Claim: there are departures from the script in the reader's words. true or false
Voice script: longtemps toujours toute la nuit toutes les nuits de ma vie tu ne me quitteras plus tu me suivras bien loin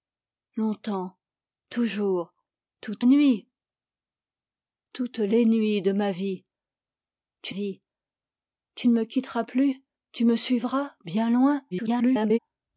true